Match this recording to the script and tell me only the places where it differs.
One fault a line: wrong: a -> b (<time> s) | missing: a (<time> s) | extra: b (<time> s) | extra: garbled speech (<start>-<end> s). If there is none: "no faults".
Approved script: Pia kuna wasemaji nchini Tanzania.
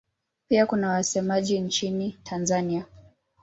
no faults